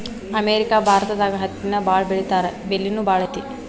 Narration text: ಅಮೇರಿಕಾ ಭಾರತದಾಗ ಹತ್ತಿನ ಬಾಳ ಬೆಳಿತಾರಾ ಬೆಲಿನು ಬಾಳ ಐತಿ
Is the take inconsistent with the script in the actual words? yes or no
no